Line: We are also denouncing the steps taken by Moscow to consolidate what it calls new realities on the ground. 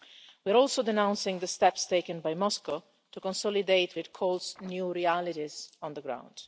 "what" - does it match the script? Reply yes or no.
no